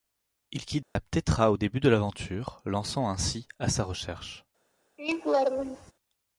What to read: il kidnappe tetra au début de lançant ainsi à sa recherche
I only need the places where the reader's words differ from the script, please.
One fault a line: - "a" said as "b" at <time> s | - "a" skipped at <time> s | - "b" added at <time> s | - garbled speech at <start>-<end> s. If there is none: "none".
- "l'aventure" added at 1.9 s